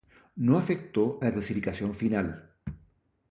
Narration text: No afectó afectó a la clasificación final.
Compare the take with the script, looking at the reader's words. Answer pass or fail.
fail